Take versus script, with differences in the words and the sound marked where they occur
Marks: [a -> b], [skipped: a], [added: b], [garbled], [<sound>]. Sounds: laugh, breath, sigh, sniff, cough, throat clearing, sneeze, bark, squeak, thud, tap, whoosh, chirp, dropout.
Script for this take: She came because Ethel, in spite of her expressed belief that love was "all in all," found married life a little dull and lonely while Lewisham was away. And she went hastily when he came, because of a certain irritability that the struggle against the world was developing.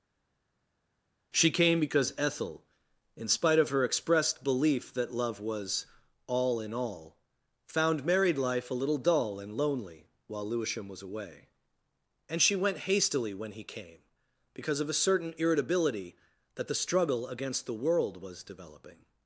She came because Ethel, in spite of her expressed belief that love was "all in all," found married life a little dull and lonely while Lewisham was away. And she went hastily when he came, because of a certain irritability that the struggle against the world was developing.